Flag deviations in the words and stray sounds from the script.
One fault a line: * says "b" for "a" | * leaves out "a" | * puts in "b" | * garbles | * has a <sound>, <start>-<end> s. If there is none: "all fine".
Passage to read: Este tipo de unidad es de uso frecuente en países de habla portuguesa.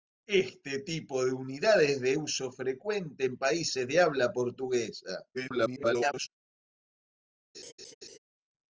* garbles
* has a laugh, 7.5-8.2 s